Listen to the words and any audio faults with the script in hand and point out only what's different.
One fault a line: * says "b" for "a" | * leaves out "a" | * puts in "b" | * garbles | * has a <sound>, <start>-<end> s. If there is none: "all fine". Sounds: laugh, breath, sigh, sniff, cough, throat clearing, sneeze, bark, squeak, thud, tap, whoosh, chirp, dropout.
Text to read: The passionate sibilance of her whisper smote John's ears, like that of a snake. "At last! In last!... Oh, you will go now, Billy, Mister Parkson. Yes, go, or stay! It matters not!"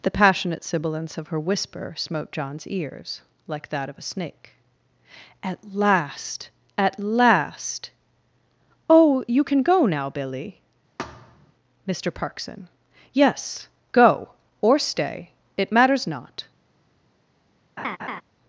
* says "At" for "In"
* says "can" for "will"
* has a thud, 11.0-11.5 s
* has a laugh, 17.8-18.2 s